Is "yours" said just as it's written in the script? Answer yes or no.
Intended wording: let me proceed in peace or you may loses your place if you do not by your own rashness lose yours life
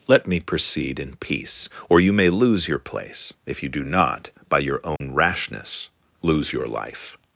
no